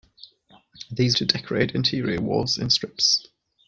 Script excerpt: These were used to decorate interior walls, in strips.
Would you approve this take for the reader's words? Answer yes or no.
no